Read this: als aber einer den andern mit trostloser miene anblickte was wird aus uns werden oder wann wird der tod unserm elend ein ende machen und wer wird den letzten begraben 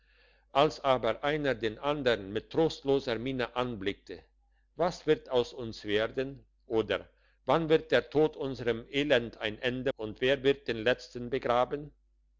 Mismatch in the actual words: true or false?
true